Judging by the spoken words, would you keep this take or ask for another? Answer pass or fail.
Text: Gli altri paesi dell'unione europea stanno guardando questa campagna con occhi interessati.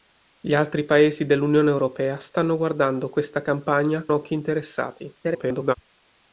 fail